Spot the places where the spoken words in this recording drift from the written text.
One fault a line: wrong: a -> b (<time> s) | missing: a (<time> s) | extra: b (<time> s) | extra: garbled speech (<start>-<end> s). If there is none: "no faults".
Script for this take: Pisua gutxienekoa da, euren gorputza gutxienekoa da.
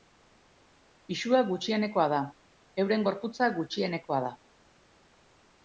no faults